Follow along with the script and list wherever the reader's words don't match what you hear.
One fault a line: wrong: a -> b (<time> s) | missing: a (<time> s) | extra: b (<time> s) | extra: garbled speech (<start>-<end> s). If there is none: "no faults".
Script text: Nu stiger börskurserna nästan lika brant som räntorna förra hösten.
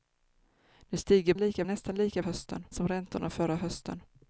wrong: börskurserna -> lika (1.4 s)
wrong: brant -> hösten (2.2 s)